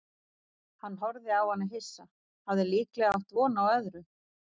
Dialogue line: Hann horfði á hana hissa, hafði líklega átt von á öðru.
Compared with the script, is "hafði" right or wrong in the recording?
right